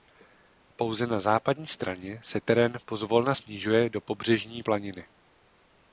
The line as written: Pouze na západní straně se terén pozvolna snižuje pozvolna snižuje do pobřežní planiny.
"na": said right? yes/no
yes